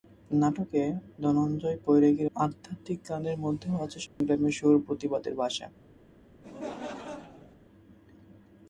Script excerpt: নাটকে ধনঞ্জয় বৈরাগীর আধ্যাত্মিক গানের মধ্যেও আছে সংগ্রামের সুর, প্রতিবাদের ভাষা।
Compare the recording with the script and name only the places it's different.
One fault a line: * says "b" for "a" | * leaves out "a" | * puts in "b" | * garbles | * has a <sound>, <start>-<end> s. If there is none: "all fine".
* has a dropout, 4.1-4.2 s
* has a laugh, 6.4-7.6 s